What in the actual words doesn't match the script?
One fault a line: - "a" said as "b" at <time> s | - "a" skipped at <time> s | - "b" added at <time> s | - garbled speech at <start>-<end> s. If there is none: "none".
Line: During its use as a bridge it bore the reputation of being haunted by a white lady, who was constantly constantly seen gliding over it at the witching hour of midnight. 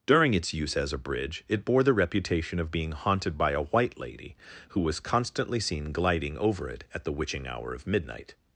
- "constantly" skipped at 5.6 s